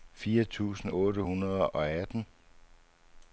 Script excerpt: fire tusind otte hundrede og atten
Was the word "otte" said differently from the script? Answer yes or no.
no